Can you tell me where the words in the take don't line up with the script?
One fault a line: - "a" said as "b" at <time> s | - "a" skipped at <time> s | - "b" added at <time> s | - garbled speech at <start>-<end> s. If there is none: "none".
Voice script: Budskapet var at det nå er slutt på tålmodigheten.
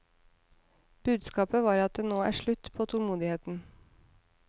none